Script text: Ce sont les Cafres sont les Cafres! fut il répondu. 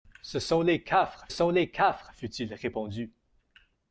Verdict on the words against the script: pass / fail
pass